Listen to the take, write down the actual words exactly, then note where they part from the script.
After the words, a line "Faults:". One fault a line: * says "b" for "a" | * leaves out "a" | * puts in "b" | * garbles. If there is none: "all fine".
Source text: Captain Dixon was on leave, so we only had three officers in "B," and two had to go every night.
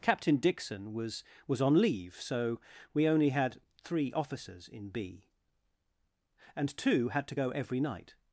Captain Dixon was was on leave, so we only had three officers in "B," and two had to go every night.
Faults:
* puts in "was"